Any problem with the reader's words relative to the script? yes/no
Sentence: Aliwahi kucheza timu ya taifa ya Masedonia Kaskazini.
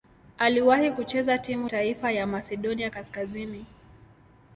yes